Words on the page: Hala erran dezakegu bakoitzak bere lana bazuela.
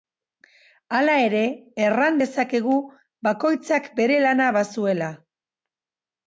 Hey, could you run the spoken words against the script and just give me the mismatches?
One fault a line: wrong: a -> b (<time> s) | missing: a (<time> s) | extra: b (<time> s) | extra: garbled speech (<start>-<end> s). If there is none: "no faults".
extra: ere (1.2 s)